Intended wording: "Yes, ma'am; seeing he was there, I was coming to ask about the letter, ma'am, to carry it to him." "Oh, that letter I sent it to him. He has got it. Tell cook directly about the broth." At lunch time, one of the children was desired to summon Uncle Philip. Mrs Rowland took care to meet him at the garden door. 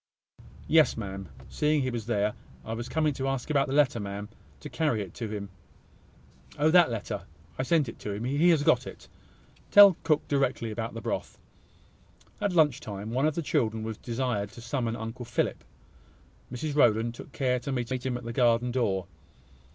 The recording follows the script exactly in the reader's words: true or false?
false